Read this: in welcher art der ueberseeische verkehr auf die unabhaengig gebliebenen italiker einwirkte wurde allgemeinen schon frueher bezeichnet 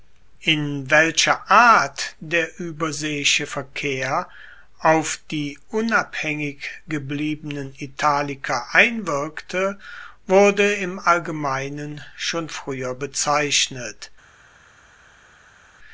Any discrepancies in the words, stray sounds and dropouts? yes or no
yes